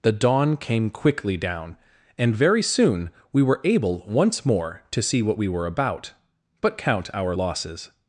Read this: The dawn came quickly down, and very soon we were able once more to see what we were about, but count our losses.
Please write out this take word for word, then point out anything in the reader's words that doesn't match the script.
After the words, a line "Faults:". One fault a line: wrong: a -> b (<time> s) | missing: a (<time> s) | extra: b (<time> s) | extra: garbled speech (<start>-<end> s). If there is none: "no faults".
The dawn came quickly down, and very soon we were able once more to see what we were about, but count our losses.
Faults:
no faults